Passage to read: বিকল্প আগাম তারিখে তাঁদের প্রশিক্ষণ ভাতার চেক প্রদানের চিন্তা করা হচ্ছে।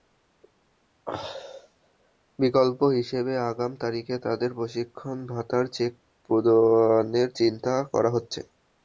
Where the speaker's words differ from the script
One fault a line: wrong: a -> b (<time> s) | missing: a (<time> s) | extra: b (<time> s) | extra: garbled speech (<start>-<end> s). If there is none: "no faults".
extra: হিসেবে (3.0 s)